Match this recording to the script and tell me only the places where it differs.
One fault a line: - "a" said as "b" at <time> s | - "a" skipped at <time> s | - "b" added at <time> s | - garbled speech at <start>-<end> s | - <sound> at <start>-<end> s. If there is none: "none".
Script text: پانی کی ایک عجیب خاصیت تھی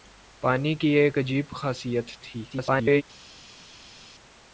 - garbled speech at 2.5-3.0 s